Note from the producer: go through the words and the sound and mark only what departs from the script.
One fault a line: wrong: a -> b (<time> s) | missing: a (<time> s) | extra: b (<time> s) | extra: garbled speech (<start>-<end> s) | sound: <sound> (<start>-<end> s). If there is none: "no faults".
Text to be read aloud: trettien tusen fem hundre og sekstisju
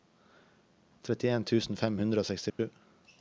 sound: dropout (2.5-2.6 s)